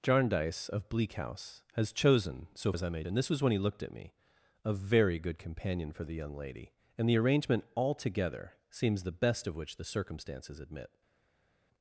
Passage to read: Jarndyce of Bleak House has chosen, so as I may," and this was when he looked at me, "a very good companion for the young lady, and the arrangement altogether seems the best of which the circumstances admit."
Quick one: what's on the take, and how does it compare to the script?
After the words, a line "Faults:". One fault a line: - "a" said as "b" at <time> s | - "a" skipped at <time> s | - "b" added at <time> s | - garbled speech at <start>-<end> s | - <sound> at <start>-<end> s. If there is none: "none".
Jarndyce of Bleak House has chosen, so as I may," and this was when he looked at me, "a very good companion for the young lady, and the arrangement altogether seems the best of which the circumstances admit."
Faults:
none